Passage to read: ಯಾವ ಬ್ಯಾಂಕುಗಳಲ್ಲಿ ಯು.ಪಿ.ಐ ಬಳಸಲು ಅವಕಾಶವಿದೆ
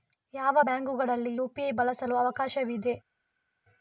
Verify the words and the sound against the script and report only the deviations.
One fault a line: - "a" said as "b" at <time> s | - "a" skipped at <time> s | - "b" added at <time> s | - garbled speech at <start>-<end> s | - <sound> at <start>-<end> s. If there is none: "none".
none